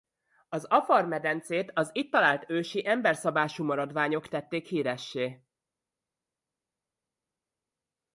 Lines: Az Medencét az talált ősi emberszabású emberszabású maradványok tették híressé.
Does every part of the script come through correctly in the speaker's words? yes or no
no